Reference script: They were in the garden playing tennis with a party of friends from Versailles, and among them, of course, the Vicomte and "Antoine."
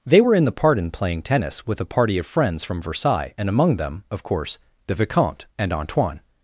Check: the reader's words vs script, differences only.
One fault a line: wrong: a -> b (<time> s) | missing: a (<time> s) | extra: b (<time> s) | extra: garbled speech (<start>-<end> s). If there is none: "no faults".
wrong: garden -> pardon (0.5 s)